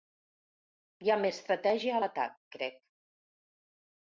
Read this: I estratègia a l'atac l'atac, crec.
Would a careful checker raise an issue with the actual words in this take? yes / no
yes